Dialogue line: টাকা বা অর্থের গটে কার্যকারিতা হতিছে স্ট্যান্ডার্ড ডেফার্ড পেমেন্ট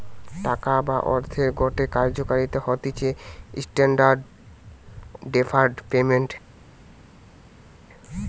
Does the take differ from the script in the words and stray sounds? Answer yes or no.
no